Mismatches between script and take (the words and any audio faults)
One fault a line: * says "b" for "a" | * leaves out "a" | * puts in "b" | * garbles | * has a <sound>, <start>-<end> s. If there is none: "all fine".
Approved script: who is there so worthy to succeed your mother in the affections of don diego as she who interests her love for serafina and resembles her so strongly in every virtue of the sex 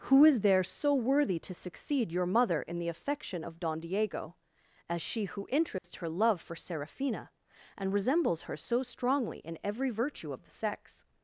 * says "affection" for "affections"
* has a dropout, 5.8-5.8 s